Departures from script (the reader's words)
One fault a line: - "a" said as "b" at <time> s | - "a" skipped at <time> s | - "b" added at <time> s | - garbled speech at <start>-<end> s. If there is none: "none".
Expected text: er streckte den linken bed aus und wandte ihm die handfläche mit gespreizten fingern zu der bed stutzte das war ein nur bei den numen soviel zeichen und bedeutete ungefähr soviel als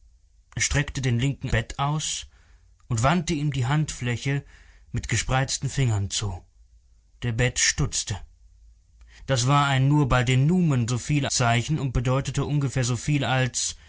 none